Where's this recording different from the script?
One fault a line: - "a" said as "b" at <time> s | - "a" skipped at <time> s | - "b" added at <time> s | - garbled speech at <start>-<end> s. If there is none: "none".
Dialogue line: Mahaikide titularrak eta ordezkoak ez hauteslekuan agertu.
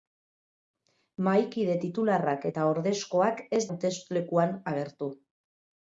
none